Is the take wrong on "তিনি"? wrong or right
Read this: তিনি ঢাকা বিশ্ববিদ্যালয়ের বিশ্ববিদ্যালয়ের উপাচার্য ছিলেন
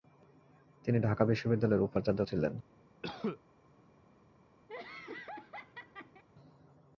right